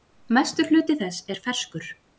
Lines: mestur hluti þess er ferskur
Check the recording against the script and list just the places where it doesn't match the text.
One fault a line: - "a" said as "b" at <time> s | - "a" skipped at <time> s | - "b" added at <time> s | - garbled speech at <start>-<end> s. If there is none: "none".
none